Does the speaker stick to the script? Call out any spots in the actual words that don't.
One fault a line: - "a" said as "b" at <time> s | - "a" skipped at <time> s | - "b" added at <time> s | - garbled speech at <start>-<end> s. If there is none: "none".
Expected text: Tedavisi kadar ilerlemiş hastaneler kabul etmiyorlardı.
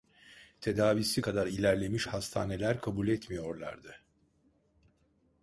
none